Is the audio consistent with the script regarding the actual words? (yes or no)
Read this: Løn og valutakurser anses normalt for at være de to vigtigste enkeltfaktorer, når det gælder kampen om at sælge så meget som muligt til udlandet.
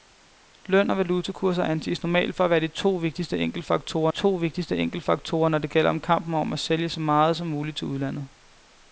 no